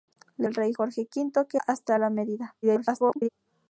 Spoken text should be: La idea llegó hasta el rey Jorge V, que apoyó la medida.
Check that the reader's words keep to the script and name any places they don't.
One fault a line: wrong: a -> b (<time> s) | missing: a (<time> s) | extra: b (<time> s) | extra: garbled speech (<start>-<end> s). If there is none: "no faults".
missing: idea llegó hasta (0.5 s)
wrong: apoyó -> hasta (1.6 s)
extra: garbled speech (2.6-3.3 s)